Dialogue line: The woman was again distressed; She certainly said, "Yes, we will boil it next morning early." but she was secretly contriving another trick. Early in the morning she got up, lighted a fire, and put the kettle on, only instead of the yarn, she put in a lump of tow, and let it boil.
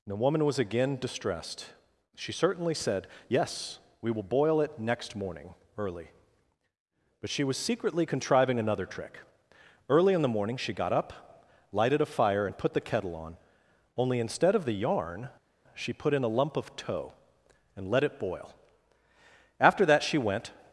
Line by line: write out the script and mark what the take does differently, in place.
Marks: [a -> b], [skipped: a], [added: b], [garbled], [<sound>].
The woman was again distressed; She certainly said, "Yes, we will boil it next morning early." but she was secretly contriving another trick. Early in the morning she got up, lighted a fire, and put the kettle on, only instead of the yarn, she put in a lump of tow, and let it boil. [added: After that she went]